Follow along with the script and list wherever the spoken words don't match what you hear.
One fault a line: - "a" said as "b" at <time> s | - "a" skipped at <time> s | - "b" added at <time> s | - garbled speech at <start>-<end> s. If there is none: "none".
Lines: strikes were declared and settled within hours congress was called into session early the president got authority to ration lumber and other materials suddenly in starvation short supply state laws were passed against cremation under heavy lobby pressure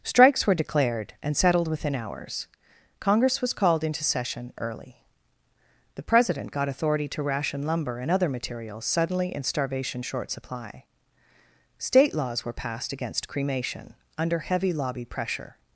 none